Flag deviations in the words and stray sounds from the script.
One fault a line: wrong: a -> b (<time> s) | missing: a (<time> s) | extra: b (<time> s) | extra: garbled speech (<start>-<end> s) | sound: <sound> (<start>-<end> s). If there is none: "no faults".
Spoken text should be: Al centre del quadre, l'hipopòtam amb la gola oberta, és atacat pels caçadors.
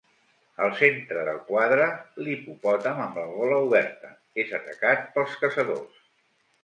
no faults